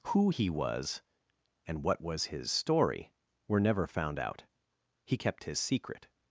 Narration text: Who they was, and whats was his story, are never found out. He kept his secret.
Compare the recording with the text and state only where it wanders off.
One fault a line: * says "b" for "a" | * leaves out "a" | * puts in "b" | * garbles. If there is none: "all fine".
* says "he" for "they"
* says "what" for "whats"
* says "were" for "are"